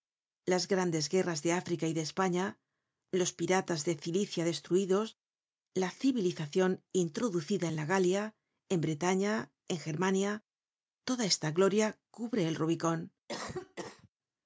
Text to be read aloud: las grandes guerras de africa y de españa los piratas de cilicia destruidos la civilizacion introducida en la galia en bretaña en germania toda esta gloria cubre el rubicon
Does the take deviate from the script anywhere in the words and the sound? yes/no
yes